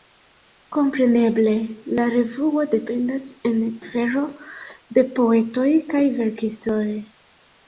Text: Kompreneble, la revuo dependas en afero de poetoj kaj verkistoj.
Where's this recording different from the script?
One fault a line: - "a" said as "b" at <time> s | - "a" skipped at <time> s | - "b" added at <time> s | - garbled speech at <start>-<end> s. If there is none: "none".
none